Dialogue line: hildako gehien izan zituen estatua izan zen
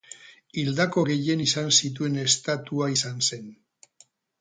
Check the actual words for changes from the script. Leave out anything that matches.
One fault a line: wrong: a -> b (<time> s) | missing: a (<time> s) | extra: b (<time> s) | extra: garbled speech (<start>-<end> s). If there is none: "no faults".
no faults